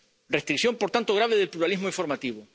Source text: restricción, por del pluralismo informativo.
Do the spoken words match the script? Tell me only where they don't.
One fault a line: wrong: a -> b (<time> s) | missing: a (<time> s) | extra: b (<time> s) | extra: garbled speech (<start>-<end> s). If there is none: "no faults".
extra: tanto grave (0.9 s)